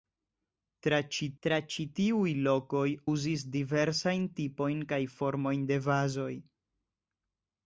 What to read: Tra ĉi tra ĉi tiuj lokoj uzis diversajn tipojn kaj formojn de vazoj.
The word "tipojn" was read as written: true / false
true